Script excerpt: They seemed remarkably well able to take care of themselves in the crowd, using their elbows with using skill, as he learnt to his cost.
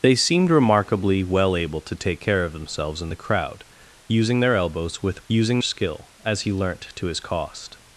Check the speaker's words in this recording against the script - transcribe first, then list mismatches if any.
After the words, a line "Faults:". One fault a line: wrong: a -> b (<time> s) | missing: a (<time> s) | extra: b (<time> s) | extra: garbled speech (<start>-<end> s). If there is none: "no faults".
They seemed remarkably well able to take care of themselves in the crowd, using their elbows with using skill, as he learnt to his cost.
Faults:
no faults